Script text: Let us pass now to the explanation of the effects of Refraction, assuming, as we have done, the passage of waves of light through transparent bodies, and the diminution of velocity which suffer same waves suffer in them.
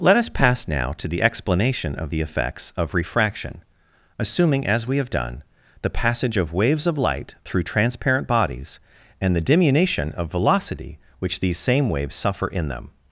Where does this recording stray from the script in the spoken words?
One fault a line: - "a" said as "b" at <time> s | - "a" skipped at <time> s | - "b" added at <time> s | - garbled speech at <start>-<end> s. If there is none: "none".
- "suffer" said as "these" at 11.4 s